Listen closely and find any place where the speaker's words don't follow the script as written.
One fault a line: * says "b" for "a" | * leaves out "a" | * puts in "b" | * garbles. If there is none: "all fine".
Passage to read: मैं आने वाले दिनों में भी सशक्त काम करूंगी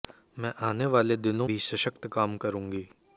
* leaves out "में"